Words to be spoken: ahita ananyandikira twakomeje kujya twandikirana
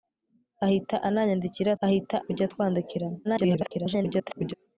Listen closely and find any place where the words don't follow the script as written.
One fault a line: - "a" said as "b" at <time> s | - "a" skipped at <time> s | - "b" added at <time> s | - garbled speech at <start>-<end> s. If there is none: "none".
- "twakomeje" said as "ahita" at 1.9 s
- garbled speech at 3.2-4.5 s